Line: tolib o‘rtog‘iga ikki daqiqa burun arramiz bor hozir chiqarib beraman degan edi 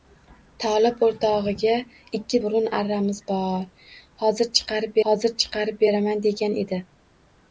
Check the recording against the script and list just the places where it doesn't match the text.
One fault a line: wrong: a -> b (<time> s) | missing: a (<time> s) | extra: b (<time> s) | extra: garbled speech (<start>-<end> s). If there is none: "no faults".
missing: daqiqa (2.4 s)
extra: hozir chiqarib (5.1 s)